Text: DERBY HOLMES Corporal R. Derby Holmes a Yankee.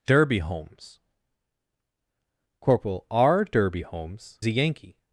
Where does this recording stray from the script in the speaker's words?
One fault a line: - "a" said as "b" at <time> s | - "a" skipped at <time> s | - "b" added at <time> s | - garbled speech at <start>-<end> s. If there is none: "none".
none